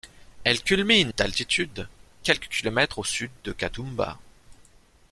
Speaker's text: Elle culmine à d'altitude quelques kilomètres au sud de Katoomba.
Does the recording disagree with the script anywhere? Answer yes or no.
yes